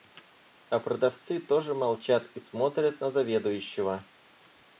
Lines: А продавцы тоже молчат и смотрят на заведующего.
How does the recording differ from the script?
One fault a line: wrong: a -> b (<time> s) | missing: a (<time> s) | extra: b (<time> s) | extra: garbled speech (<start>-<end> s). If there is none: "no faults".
no faults